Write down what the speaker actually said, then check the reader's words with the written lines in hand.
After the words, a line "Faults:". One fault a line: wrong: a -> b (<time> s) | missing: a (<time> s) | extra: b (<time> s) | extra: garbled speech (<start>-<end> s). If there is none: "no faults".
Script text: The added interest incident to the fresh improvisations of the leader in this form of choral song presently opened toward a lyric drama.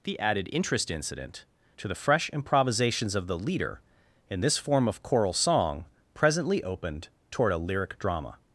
The added interest incident to the fresh improvisations of the leader in this form of choral song presently opened toward a lyric drama.
Faults:
no faults